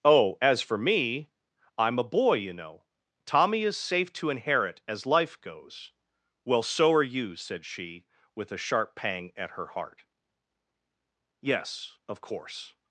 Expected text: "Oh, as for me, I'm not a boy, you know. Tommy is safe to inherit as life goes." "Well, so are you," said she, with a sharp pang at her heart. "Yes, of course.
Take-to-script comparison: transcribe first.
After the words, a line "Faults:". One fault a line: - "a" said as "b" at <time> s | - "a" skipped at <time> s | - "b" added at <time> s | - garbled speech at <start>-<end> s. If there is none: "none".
"Oh, as for me, I'm a boy, you know. Tommy is safe to inherit as life goes." "Well, so are you," said she, with a sharp pang at her heart. "Yes, of course.
Faults:
- "not" skipped at 2.0 s